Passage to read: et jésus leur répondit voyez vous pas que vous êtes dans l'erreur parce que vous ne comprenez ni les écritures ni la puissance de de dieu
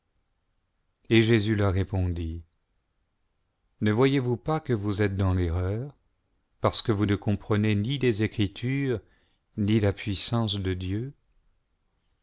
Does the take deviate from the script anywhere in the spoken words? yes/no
yes